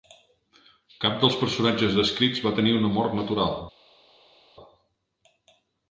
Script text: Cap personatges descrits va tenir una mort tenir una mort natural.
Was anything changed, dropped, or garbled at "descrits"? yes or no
no